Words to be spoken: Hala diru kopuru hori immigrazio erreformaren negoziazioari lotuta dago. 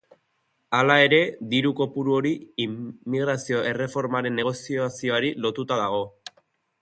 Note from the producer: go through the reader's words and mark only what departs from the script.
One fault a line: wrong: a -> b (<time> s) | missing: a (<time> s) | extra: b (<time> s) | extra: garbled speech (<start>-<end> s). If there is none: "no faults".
extra: ere (1.1 s)